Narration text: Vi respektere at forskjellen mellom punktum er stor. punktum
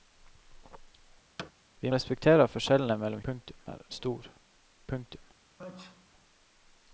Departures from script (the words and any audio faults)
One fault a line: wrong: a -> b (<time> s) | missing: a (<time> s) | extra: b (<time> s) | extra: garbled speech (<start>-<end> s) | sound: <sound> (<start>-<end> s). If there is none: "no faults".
sound: thud (1.4-1.5 s)
sound: sneeze (5.6-6.1 s)